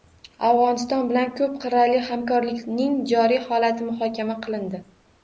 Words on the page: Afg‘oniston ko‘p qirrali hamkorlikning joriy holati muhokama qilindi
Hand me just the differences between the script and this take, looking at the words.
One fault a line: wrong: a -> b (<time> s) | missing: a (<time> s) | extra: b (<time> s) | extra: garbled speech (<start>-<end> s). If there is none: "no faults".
extra: bilan (1.1 s)